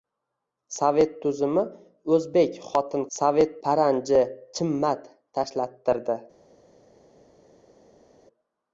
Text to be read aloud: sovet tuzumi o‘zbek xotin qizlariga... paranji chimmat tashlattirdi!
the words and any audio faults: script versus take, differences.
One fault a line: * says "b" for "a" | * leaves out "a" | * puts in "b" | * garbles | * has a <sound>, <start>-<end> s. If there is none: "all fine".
* says "sovet" for "qizlariga"